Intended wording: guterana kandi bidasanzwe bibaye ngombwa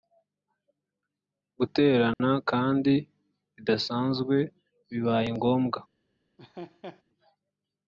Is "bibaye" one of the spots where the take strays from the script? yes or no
no